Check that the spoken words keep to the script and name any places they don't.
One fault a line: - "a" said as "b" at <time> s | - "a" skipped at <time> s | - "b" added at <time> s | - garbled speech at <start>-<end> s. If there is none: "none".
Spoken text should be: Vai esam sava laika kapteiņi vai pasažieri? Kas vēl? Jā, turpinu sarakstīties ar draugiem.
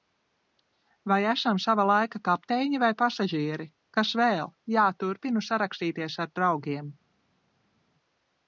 none